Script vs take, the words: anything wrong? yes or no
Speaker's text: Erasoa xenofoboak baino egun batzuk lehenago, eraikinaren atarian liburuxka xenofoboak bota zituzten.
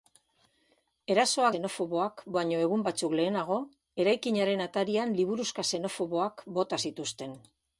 no